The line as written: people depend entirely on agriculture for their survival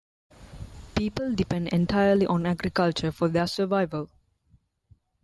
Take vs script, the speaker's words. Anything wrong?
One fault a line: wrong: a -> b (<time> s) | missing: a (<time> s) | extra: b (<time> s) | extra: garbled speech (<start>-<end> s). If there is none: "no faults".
no faults